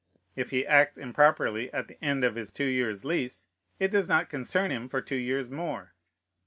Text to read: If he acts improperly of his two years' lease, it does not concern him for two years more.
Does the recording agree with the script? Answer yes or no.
no